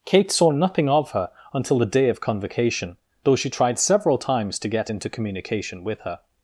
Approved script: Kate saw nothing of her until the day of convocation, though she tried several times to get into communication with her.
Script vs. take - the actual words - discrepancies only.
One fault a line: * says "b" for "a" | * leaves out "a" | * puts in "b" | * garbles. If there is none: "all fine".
all fine